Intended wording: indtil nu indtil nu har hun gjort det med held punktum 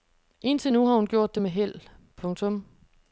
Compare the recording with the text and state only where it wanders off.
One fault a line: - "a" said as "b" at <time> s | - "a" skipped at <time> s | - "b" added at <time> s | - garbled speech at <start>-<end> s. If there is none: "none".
- "indtil nu" skipped at 0.9 s